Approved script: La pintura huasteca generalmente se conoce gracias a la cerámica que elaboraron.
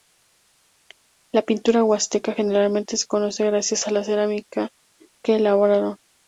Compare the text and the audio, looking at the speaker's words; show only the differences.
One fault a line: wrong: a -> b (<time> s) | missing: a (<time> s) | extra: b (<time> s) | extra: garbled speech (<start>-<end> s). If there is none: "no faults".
no faults